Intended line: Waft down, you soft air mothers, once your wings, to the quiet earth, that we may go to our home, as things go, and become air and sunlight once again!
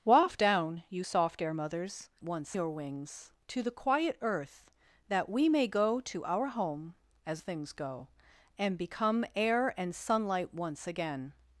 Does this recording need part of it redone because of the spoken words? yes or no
no